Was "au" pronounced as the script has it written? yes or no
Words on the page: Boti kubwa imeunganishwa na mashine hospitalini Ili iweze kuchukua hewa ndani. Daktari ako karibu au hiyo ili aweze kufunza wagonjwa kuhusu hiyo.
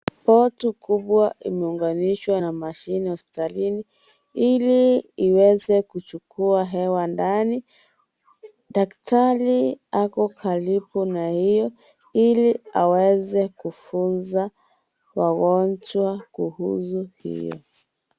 no